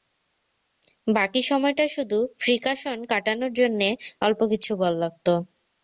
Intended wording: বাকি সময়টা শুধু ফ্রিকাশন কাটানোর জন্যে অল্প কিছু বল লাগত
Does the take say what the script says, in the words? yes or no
yes